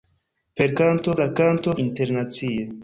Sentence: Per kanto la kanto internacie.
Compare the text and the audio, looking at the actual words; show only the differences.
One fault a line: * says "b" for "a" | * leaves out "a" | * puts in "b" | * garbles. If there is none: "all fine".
all fine